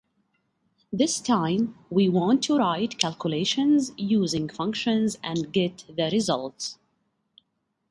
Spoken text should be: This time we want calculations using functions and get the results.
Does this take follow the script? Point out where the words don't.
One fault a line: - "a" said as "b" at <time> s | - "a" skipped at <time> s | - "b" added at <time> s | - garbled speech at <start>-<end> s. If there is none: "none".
- "to write" added at 2.4 s